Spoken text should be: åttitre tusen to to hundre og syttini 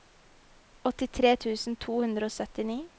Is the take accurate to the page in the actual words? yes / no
no